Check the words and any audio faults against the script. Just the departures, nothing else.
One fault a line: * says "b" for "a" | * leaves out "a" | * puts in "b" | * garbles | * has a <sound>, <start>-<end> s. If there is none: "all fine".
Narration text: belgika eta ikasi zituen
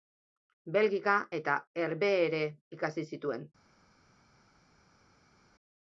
* puts in "herbehere"